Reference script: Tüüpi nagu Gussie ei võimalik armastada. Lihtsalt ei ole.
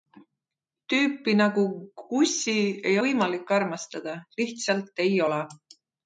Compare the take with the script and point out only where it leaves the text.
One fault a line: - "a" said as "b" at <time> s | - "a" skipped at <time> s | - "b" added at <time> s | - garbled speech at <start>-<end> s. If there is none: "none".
none